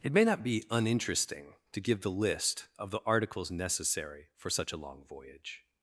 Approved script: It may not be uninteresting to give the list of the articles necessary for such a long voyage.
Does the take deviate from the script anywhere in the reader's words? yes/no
no